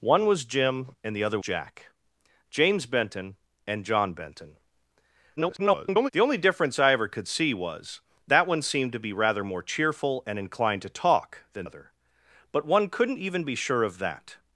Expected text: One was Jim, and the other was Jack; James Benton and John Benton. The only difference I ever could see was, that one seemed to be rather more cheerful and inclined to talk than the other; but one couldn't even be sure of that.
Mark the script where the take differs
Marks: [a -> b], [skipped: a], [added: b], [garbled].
One was Jim, and the other [skipped: was] Jack; James Benton and John Benton. [garbled] The only difference I ever could see was, that one seemed to be rather more cheerful and inclined to talk than [skipped: the] other; but one couldn't even be sure of that.